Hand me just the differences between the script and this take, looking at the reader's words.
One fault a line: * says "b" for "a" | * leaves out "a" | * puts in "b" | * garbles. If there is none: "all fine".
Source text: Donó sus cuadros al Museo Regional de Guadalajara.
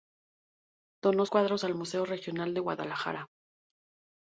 * leaves out "sus"